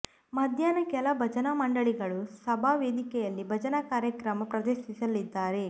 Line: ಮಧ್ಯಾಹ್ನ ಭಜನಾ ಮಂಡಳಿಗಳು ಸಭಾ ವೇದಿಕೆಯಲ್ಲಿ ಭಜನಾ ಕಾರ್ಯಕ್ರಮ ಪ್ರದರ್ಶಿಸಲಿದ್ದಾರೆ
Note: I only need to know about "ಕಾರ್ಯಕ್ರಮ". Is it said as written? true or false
true